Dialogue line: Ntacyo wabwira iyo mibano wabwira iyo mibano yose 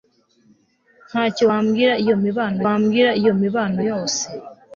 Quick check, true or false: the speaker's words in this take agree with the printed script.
true